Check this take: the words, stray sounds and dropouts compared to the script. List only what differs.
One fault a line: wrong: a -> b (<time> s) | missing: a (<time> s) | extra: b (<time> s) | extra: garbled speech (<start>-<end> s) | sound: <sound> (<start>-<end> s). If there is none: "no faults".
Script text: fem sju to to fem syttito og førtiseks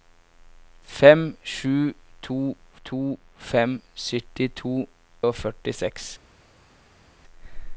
no faults